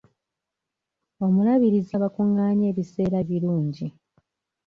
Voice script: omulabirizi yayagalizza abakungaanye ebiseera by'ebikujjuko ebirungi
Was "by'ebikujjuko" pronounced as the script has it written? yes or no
no